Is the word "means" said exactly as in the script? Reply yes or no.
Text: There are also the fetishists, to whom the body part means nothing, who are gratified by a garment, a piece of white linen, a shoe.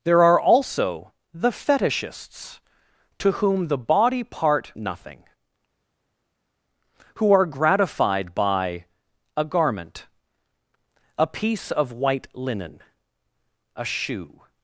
no